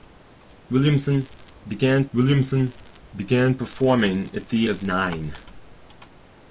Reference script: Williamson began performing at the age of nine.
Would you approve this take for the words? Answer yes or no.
no